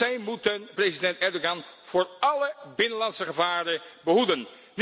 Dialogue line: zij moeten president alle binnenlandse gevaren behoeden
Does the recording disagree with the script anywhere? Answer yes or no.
yes